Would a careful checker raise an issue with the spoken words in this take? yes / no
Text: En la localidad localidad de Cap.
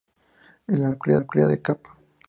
no